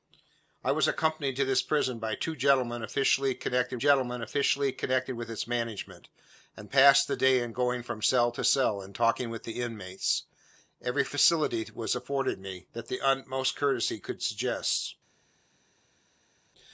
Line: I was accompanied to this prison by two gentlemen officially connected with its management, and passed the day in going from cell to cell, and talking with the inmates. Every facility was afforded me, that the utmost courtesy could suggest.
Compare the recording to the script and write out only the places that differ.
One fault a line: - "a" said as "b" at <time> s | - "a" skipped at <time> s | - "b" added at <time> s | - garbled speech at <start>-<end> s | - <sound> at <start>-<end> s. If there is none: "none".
- "gentlemen officially connected" added at 3.8 s